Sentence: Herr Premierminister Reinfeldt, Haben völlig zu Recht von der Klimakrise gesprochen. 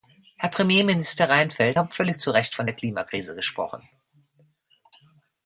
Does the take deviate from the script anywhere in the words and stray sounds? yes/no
no